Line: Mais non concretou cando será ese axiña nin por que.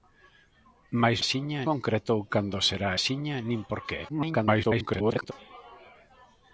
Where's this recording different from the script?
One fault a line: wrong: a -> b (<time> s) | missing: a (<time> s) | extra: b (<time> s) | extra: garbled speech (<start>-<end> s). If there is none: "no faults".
wrong: non -> axiña (1.2 s)
missing: ese (2.9 s)
extra: garbled speech (4.1-5.3 s)